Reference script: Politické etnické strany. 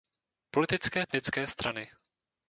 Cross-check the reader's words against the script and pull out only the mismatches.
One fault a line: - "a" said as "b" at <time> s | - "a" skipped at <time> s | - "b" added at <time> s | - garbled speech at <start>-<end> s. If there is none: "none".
none